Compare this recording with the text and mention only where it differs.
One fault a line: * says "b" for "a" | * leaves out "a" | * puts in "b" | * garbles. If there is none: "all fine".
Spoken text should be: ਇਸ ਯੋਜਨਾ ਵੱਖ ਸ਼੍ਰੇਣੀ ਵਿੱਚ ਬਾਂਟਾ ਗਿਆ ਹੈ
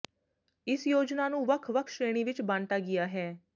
* puts in "ਨੂੰ ਵੱਖ"